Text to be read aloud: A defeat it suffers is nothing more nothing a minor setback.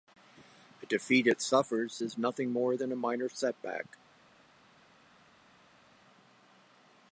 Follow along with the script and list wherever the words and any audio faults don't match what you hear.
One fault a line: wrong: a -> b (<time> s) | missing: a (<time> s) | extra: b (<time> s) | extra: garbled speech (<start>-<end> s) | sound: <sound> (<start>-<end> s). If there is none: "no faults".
wrong: nothing -> than (2.7 s)